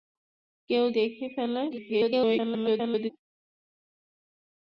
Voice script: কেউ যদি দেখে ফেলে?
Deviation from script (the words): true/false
true